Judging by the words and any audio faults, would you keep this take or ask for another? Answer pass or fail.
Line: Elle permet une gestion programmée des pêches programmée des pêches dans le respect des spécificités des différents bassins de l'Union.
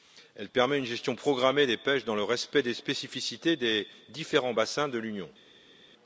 fail